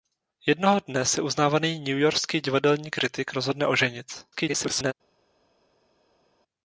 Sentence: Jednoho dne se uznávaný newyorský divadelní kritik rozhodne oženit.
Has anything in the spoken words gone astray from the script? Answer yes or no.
yes